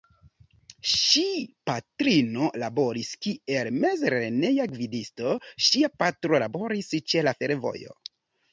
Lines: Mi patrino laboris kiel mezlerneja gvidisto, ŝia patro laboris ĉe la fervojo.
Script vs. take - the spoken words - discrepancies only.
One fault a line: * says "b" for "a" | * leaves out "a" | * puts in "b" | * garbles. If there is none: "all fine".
* says "Ŝi" for "Mi"